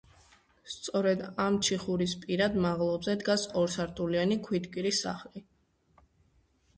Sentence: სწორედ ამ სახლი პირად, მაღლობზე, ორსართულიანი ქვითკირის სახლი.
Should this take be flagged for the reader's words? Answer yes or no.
yes